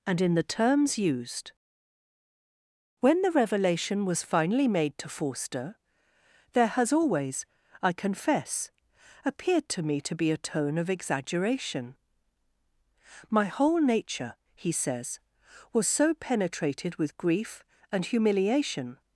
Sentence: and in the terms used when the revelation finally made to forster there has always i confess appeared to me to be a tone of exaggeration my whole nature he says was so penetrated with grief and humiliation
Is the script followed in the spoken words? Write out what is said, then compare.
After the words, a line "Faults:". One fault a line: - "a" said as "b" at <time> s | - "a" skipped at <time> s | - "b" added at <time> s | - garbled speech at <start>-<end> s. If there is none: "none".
and in the terms used when the revelation was finally made to forster there has always i confess appeared to me to be a tone of exaggeration my whole nature he says was so penetrated with grief and humiliation
Faults:
- "was" added at 4.0 s